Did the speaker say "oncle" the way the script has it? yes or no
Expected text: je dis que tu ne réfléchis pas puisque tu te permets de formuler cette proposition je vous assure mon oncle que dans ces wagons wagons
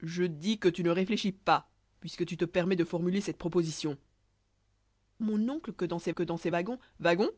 no